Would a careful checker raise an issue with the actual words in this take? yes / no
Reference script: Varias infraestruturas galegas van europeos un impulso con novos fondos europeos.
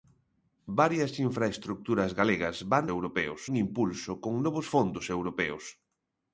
no